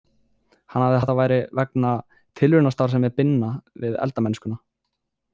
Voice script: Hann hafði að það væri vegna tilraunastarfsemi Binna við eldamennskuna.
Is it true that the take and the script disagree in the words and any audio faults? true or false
false